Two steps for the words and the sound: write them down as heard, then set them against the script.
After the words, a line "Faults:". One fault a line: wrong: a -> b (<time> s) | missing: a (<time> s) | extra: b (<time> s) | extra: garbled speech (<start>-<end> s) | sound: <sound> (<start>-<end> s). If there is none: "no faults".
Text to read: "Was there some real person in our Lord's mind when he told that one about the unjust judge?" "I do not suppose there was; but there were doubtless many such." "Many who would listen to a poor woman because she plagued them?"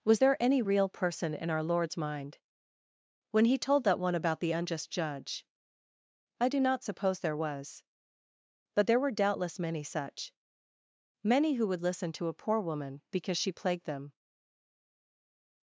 "Was there any real person in our Lord's mind when he told that one about the unjust judge?" "I do not suppose there was; but there were doubtless many such." "Many who would listen to a poor woman because she plagued them?"
Faults:
wrong: some -> any (0.4 s)